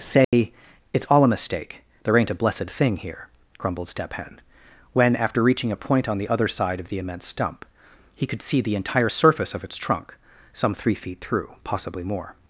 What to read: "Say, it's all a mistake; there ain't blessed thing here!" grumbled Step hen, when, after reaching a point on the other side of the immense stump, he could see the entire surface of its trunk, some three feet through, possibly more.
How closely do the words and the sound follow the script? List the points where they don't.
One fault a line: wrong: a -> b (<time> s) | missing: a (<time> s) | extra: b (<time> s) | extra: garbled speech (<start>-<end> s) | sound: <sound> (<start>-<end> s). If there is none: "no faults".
sound: dropout (0.2-0.3 s)
extra: a (2.3 s)